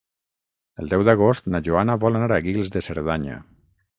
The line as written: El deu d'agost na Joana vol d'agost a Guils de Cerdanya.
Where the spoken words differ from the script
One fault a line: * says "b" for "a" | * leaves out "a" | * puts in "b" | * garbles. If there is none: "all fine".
* says "anar" for "d'agost"